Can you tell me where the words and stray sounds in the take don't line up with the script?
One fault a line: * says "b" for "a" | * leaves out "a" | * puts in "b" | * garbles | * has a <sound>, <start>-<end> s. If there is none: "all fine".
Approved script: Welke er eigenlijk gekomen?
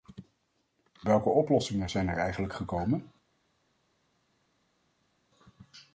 * puts in "oplossingen zijn"